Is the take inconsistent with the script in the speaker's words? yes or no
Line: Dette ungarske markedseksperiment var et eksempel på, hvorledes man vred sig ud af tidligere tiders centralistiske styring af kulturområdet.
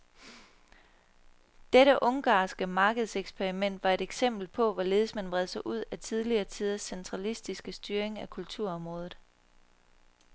no